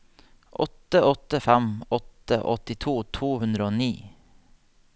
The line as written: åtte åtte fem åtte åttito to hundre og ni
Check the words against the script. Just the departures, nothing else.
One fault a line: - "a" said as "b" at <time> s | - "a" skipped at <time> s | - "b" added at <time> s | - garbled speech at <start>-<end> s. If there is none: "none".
none